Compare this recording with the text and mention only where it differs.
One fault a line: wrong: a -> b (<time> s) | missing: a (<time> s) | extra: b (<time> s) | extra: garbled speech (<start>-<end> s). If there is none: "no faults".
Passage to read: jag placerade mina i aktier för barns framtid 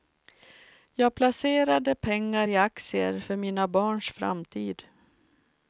wrong: mina -> pengar (1.9 s)
extra: mina (3.4 s)